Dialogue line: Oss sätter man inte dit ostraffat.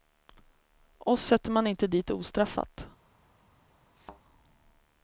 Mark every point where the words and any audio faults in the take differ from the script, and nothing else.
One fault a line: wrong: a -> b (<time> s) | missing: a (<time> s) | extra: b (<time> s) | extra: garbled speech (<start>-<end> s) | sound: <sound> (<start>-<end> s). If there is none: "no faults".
sound: thud (4.0-4.2 s)